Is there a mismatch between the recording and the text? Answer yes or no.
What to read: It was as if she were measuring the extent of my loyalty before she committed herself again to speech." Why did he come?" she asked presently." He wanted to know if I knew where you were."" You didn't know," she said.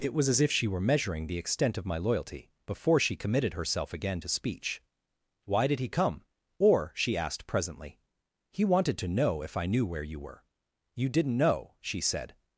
yes